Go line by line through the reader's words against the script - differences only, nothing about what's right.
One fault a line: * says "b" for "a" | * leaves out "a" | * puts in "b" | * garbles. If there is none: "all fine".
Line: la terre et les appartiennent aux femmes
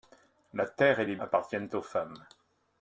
all fine